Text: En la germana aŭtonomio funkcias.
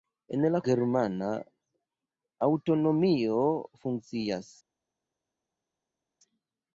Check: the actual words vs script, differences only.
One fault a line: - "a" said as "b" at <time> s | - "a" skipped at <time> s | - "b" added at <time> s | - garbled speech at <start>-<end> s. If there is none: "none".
none